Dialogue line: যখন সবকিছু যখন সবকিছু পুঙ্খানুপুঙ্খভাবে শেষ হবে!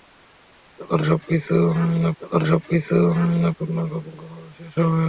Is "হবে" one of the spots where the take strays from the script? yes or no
no